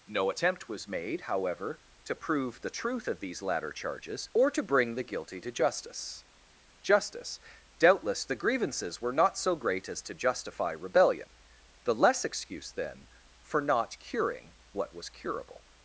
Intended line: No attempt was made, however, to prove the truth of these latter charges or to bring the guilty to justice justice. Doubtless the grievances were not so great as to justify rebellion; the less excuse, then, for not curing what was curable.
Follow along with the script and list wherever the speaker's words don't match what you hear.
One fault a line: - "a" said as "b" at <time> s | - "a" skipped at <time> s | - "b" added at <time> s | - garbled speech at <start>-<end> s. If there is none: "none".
none